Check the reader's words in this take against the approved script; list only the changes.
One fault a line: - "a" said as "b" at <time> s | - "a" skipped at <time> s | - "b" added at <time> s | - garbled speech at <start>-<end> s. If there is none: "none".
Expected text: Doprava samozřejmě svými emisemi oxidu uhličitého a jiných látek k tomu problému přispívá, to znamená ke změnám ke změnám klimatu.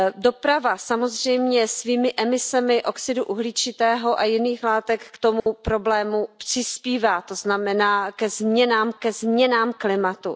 none